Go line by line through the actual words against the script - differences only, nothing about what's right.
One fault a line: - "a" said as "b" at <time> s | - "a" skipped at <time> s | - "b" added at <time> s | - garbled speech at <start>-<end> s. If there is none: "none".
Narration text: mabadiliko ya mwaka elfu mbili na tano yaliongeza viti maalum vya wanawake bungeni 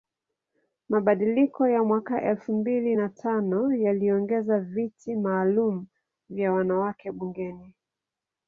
none